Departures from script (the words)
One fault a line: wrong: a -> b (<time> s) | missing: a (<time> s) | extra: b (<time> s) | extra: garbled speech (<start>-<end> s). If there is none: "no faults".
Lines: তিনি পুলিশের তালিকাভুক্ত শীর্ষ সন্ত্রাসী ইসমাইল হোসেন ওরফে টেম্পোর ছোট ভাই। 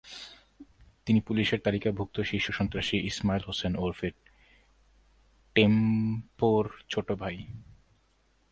no faults